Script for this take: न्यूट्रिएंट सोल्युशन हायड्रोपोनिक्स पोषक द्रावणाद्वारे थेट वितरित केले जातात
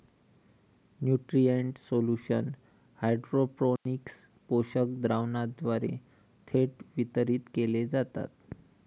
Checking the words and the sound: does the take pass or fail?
fail